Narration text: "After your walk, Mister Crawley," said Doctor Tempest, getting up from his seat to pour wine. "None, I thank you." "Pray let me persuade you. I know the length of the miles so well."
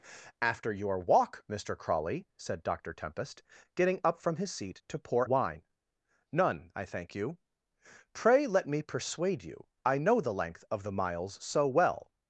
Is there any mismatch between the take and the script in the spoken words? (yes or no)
no